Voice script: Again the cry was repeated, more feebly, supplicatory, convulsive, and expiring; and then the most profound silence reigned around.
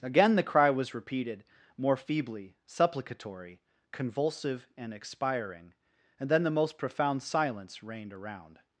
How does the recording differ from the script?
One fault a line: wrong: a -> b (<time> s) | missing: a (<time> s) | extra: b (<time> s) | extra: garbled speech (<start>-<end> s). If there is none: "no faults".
no faults